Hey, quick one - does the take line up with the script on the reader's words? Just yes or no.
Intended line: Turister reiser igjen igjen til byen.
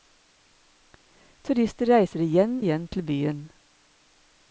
yes